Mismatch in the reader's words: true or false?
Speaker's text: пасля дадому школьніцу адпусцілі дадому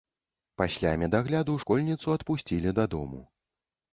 true